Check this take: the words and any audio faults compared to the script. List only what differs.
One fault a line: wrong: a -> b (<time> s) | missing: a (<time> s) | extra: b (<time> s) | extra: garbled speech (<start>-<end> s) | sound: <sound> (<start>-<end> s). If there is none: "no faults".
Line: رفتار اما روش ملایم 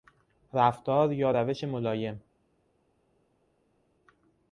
wrong: اما -> یا (1.1 s)